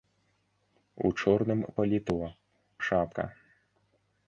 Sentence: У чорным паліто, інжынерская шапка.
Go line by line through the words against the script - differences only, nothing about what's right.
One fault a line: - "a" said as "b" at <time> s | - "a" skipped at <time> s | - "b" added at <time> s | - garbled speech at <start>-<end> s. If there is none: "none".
- "інжынерская" skipped at 2.1 s